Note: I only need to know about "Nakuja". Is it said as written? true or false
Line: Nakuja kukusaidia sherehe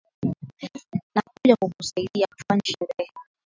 true